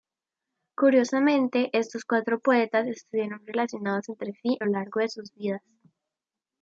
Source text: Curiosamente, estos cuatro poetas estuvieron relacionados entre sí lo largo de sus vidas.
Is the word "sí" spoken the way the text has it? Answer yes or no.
yes